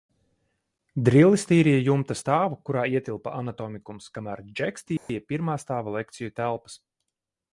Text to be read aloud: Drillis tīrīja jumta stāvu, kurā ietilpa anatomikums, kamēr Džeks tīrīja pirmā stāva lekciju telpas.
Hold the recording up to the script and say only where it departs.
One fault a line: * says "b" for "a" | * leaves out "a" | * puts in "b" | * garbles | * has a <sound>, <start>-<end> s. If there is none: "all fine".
* has a dropout, 5.0-5.1 s